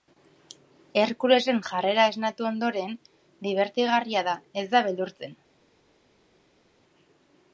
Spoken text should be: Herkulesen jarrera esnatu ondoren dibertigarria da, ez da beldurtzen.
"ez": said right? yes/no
yes